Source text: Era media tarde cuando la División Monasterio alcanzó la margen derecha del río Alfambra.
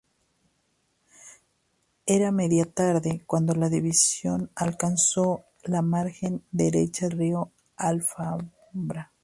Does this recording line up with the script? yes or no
no